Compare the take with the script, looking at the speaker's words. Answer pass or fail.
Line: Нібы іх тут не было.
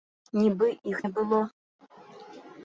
fail